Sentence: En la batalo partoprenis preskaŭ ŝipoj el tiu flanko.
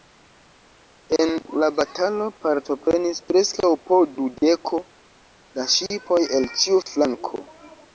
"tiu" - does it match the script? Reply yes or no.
no